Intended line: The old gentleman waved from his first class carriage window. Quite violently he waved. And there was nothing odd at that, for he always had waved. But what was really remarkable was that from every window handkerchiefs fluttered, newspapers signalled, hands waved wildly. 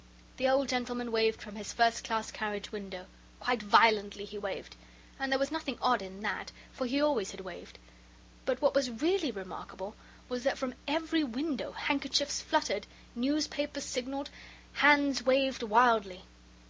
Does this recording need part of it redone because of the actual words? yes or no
yes